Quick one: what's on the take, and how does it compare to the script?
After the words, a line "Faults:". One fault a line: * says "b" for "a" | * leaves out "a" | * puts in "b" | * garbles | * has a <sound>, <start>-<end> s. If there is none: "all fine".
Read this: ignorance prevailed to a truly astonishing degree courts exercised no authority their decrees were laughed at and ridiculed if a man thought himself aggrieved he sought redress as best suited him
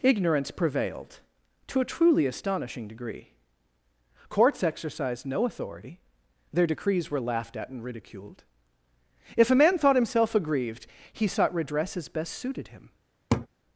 ignorance prevailed to a truly astonishing degree courts exercised no authority their decrees were laughed at and ridiculed if a man thought himself aggrieved he sought redress as best suited him
Faults:
* has a laugh, 13.3-13.5 s